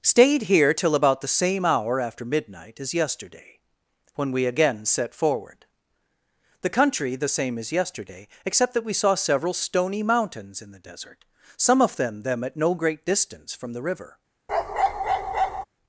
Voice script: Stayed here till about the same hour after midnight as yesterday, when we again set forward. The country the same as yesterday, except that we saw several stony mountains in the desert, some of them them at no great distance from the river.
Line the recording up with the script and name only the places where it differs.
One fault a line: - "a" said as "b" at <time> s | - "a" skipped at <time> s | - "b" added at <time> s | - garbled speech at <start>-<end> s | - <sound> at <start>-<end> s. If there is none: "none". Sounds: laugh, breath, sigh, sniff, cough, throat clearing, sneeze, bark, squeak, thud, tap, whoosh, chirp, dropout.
- bark at 14.5-15.7 s